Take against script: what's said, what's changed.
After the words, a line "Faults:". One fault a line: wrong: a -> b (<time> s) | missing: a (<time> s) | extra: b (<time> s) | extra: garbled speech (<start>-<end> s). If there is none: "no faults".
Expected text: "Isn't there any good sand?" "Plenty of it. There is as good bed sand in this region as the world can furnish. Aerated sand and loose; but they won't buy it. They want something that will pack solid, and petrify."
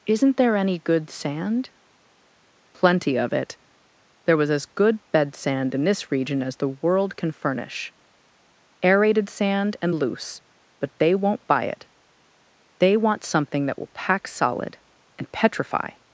"Isn't there any good sand?" "Plenty of it. There was as good bed sand in this region as the world can furnish. Aerated sand and loose; but they won't buy it. They want something that will pack solid, and petrify."
Faults:
wrong: is -> was (4.4 s)